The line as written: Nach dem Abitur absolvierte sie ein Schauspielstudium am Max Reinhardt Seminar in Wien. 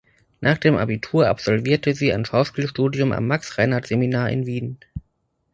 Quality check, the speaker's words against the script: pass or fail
pass